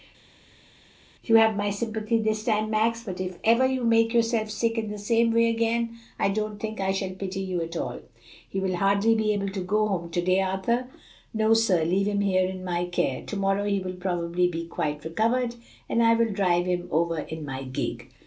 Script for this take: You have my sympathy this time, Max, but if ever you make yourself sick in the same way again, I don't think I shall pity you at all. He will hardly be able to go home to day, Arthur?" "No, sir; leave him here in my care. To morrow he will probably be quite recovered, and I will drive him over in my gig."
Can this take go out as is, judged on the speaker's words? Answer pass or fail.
pass